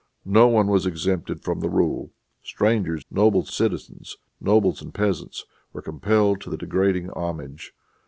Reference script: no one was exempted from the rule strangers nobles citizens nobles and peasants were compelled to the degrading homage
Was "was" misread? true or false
false